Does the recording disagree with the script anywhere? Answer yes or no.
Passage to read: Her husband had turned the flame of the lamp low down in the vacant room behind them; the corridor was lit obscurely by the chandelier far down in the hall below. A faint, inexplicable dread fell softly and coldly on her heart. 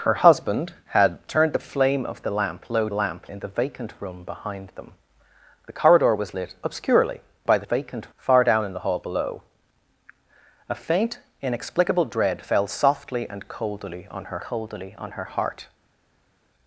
yes